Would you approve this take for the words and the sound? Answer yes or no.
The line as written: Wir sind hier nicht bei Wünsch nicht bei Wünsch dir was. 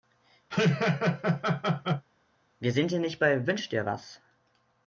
no